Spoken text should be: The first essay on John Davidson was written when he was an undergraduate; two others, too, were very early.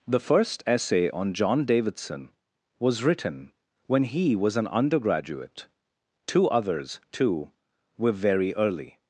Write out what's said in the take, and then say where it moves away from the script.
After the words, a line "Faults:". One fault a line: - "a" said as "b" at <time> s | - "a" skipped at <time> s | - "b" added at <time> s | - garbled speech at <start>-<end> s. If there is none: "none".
The first essay on John Davidson was written when he was an undergraduate; two others, too, were very early.
Faults:
none